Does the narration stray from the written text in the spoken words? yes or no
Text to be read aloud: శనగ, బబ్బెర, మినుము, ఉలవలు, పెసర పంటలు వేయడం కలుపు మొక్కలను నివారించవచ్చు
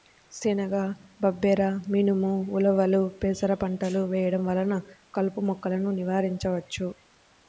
yes